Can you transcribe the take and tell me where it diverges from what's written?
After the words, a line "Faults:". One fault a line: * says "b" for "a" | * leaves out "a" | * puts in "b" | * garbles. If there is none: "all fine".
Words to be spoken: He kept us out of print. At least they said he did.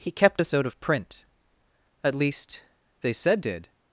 He kept us out of print. At least they said did.
Faults:
* leaves out "he"